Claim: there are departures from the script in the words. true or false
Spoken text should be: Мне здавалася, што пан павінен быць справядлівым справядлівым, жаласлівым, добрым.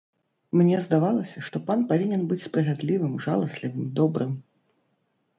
true